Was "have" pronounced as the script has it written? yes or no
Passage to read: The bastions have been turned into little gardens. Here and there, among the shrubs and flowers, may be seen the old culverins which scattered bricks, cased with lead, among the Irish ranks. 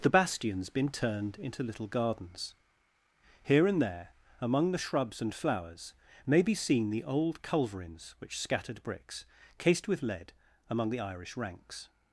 no